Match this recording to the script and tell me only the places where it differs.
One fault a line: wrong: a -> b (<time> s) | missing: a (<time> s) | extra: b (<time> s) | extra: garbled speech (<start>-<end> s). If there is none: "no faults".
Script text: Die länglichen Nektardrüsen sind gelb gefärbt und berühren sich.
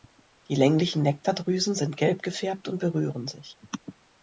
no faults